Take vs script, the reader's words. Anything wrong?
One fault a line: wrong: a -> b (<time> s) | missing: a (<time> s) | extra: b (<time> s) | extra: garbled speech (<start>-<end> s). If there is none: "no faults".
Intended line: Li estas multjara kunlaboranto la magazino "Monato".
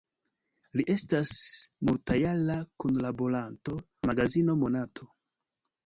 no faults